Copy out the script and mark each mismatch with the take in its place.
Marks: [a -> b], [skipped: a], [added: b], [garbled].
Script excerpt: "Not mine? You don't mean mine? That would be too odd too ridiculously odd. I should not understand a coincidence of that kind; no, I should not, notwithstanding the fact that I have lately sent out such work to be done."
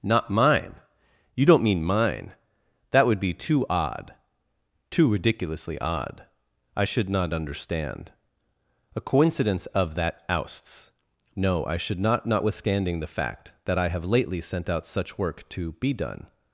"Not mine? You don't mean mine? That would be too odd too ridiculously odd. I should not understand a coincidence of that [kind; -> ousts] no, I should not, notwithstanding the fact that I have lately sent out such work to be done."